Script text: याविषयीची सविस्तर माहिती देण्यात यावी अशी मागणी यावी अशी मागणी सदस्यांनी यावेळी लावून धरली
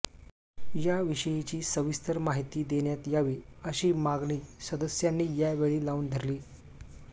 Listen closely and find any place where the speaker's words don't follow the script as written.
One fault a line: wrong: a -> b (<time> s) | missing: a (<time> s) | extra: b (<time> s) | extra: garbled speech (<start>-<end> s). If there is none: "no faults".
missing: यावी अशी मागणी (4.4 s)